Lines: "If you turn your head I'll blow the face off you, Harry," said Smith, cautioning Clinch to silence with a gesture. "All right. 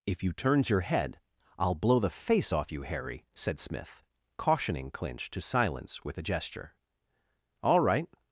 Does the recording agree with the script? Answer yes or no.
no